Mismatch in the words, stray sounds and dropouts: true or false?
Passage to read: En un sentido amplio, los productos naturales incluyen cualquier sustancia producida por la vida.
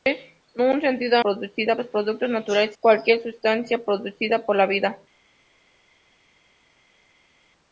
true